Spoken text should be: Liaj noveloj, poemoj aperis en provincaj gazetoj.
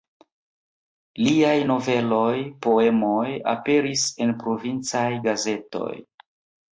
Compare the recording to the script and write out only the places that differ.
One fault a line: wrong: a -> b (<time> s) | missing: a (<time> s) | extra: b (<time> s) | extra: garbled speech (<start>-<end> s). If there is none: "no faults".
no faults